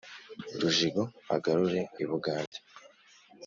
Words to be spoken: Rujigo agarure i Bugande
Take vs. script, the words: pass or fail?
pass